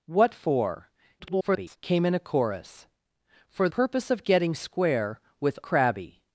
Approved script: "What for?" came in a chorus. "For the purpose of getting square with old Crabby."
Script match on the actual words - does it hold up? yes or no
no